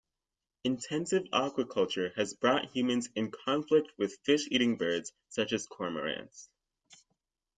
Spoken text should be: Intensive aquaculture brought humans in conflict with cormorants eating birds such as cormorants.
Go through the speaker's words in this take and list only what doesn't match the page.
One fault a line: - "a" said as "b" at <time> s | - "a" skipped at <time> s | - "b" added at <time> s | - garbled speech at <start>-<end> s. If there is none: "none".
- "has" added at 2.1 s
- "cormorants" said as "fish" at 4.2 s